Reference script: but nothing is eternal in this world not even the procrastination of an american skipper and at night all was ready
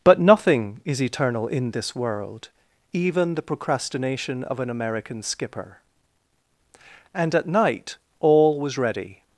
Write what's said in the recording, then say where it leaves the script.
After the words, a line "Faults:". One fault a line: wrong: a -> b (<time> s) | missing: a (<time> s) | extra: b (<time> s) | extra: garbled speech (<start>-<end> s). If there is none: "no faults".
but nothing is eternal in this world even the procrastination of an american skipper and at night all was ready
Faults:
missing: not (2.5 s)